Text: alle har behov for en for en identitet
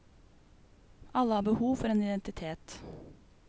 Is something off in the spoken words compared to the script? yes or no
yes